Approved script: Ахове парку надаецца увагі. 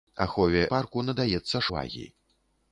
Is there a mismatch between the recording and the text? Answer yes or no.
no